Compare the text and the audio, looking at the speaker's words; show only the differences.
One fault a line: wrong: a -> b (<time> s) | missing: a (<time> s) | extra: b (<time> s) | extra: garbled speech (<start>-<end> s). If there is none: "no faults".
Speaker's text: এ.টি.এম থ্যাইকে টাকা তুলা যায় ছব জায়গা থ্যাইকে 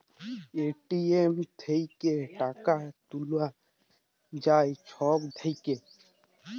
missing: জায়গা (5.2 s)